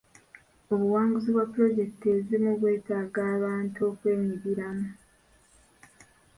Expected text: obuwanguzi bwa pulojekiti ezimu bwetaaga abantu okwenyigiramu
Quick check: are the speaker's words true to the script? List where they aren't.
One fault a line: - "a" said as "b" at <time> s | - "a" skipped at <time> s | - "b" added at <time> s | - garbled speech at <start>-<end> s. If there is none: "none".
none